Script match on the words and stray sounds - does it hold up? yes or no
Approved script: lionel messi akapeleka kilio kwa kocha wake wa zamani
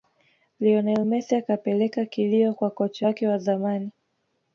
yes